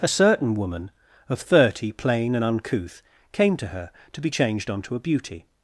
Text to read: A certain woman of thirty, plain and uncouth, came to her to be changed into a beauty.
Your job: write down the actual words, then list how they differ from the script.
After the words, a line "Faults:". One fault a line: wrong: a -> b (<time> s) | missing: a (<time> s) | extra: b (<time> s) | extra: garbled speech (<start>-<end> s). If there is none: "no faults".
A certain woman of thirty, plain and uncouth, came to her to be changed onto a beauty.
Faults:
wrong: into -> onto (4.7 s)